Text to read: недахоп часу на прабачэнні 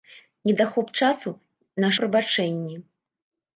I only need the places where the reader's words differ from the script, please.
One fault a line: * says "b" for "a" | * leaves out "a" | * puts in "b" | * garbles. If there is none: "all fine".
all fine